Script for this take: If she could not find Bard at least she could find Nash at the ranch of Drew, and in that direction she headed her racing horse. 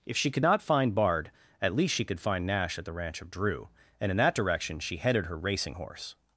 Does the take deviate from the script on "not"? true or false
false